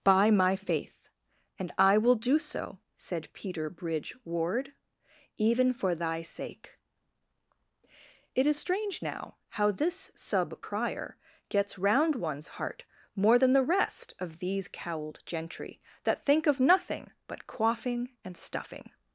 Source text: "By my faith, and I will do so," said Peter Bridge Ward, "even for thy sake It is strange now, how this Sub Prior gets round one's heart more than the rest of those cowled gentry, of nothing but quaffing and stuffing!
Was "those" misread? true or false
true